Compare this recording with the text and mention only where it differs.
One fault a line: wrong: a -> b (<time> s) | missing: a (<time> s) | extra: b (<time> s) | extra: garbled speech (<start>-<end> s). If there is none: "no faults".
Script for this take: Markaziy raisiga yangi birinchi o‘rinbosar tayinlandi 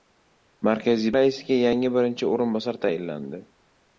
no faults